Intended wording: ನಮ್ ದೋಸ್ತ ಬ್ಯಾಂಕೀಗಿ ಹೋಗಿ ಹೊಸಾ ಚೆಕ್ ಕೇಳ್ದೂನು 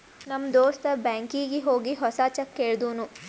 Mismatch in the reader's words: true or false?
false